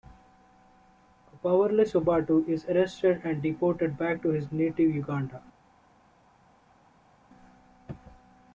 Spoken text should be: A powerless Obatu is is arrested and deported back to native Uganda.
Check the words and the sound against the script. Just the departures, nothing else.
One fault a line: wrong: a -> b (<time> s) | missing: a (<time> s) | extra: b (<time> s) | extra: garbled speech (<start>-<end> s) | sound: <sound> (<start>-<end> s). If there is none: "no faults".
missing: is (2.6 s)
extra: his (4.3 s)